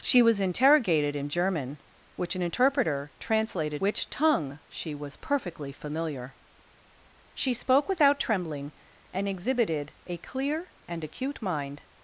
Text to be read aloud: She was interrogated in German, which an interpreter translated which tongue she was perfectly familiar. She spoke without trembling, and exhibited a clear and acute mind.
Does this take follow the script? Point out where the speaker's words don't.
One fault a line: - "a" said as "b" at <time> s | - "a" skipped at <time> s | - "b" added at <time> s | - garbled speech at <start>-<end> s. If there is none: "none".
none